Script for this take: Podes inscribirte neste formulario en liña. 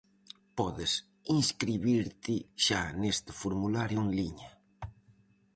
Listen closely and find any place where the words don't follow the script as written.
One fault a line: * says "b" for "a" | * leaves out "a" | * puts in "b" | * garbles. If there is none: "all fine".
* puts in "xa"